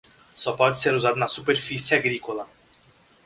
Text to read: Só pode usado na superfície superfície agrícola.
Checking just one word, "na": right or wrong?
right